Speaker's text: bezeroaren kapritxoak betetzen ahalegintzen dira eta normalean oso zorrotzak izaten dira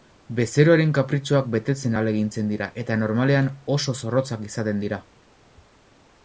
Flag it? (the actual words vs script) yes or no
no